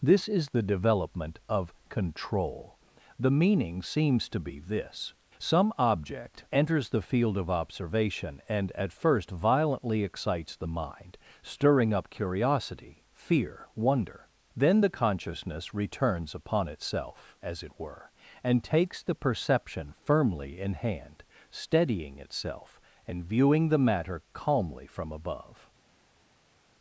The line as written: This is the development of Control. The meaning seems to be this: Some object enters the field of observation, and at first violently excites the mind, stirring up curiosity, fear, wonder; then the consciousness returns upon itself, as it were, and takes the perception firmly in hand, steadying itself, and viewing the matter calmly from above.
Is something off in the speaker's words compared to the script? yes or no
no